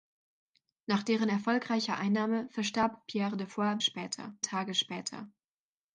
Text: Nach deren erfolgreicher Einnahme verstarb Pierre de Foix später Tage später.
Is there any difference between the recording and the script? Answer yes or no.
no